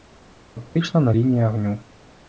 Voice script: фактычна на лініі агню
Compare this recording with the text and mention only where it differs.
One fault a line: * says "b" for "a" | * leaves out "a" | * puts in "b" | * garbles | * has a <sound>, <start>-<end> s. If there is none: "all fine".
all fine